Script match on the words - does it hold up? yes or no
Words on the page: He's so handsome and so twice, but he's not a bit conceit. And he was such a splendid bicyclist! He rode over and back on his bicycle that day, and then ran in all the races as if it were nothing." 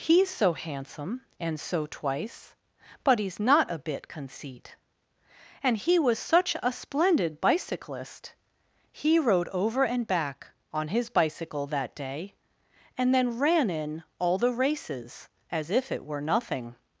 yes